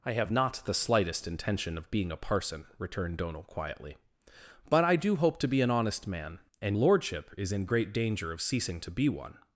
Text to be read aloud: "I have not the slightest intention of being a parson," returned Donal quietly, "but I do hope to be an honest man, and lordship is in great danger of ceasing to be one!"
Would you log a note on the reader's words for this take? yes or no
no